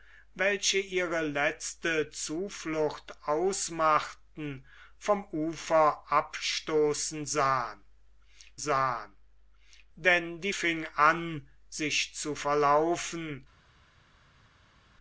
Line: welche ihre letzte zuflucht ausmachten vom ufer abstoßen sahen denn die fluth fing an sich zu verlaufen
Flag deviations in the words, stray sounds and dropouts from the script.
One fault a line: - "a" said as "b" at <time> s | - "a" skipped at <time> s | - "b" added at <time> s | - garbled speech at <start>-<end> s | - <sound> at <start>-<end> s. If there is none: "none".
- "sahen" added at 8.6 s
- "fluth" skipped at 10.5 s